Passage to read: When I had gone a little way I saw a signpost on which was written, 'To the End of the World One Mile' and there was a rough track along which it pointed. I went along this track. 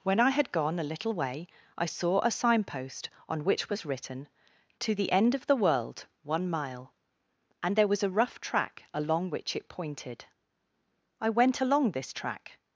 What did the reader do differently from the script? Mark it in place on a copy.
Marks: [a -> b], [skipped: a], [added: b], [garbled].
When I had gone a little way I saw a signpost on which was written, 'To the End of the World One Mile' and there was a rough track along which it pointed. I went along this track.